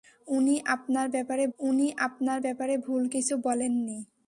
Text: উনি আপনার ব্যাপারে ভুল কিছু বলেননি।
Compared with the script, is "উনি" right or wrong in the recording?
right